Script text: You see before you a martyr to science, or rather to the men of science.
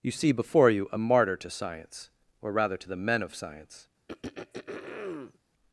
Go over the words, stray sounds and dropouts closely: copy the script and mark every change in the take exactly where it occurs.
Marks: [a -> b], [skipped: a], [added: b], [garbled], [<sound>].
You see before you a martyr to science, or rather to the men of science. [throat clearing]